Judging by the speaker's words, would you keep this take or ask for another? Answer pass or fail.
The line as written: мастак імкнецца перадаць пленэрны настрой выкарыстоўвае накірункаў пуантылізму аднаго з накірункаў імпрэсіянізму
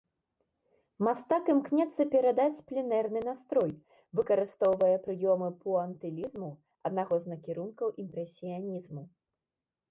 fail